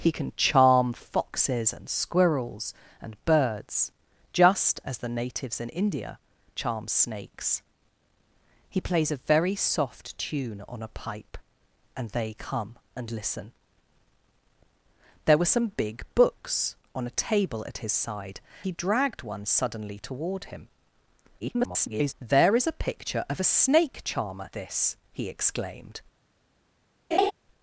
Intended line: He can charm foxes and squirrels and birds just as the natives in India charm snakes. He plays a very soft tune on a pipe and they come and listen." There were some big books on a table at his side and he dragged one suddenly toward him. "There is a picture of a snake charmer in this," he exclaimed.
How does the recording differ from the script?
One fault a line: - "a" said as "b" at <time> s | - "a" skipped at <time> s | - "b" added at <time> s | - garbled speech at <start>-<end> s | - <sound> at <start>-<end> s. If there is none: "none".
- "and" skipped at 18.4 s
- garbled speech at 21.4-22.1 s
- "in" skipped at 24.5 s
- laugh at 27.1-27.3 s